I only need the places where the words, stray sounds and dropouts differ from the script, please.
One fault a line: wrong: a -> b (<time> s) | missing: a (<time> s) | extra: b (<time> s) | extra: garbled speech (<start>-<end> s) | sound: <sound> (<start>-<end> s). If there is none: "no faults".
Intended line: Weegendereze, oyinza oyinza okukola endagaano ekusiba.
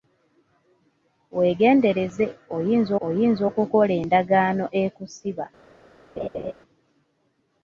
sound: laugh (6.2-6.5 s)